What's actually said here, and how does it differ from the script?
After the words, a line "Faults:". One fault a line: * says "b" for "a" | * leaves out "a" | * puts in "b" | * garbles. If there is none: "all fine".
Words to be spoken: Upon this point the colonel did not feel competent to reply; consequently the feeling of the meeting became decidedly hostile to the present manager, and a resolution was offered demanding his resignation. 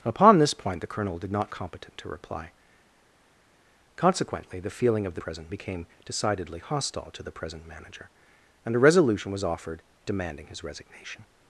Upon this point the colonel did not competent to reply; consequently the feeling of the present became decidedly hostile to the present manager, and a resolution was offered demanding his resignation.
Faults:
* leaves out "feel"
* says "present" for "meeting"